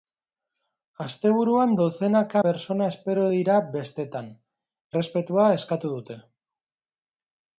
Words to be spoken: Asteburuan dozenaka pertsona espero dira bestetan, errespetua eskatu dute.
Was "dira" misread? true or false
false